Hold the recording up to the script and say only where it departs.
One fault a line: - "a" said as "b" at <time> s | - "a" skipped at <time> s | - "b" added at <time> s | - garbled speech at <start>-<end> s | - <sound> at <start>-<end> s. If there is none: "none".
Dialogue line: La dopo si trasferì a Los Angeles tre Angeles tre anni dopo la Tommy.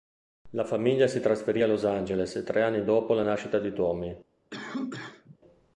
- "dopo" said as "famiglia" at 0.7 s
- "Angeles tre" skipped at 2.6 s
- "nascita di" added at 3.2 s
- cough at 4.5-5.4 s